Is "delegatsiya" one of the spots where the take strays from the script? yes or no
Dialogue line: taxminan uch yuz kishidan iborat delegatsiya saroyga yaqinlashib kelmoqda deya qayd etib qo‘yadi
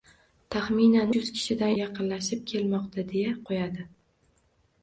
yes